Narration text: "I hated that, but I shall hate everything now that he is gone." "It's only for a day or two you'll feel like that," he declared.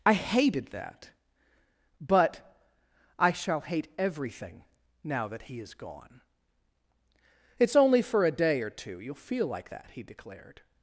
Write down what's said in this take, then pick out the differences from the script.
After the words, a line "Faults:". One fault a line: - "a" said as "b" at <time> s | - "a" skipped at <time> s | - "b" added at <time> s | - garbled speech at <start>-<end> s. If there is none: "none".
"I hated that, but I shall hate everything now that he is gone." "It's only for a day or two you'll feel like that," he declared.
Faults:
none